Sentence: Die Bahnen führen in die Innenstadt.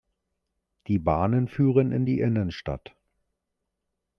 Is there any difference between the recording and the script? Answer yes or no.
no